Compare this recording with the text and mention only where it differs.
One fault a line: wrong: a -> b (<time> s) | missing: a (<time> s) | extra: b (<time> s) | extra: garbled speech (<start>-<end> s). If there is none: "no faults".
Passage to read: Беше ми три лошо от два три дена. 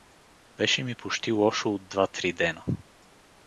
wrong: три -> почти (0.9 s)